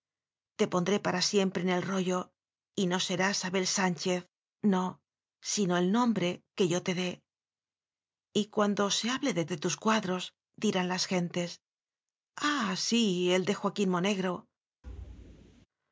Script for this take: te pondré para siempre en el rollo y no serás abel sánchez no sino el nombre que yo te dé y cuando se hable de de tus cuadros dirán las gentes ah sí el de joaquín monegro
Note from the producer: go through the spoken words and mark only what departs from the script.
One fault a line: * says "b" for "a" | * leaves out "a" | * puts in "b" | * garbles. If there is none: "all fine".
all fine